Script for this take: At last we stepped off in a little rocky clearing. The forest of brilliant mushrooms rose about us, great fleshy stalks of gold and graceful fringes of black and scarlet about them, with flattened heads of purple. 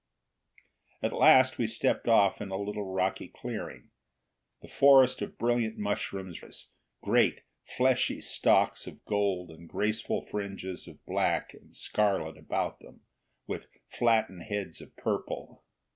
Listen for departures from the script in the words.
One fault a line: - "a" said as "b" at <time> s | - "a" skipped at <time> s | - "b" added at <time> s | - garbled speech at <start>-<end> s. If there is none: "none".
- "rose about" skipped at 6.4 s